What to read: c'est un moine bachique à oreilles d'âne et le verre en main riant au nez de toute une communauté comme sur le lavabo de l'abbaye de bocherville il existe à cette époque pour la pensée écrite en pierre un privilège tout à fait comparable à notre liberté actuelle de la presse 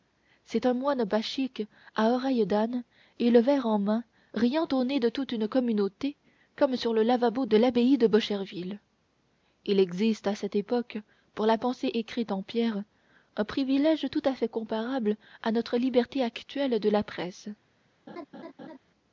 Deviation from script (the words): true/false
false